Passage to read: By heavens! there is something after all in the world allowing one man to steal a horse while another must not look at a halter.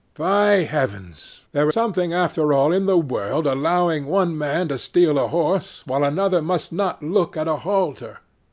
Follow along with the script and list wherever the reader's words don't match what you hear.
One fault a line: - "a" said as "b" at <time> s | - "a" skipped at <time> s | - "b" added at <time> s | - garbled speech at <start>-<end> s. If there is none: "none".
- "is" skipped at 1.7 s